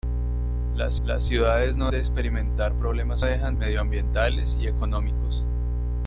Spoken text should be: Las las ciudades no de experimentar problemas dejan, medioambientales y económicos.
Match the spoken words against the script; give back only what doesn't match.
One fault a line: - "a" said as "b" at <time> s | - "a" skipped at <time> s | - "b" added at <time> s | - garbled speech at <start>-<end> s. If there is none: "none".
none